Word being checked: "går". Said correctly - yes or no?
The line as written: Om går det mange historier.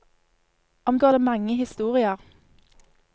yes